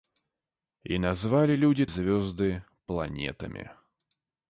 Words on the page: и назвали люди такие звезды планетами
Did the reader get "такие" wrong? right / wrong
wrong